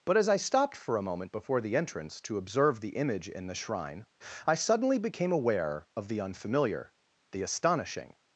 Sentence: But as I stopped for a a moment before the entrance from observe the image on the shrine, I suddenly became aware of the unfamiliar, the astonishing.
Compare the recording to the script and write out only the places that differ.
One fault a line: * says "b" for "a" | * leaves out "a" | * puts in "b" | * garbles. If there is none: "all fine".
* leaves out "a"
* says "to" for "from"
* says "in" for "on"